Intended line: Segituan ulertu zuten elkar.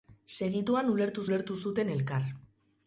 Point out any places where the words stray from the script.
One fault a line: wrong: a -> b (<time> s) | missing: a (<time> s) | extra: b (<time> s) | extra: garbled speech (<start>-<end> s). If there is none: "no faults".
extra: ulertu (1.3 s)